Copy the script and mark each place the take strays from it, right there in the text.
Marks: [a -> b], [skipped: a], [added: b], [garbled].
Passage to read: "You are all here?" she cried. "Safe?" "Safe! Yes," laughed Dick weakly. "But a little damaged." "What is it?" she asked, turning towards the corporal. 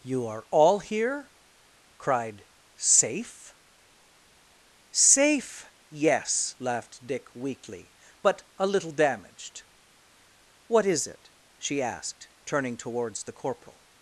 "You are all here?" [skipped: she] cried. "Safe?" "Safe! Yes," laughed Dick weakly. "But a little damaged." "What is it?" she asked, turning towards the corporal.